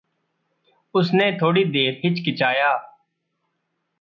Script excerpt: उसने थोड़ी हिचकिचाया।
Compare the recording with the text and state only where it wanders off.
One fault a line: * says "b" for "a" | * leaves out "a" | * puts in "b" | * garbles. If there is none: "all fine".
* puts in "देर"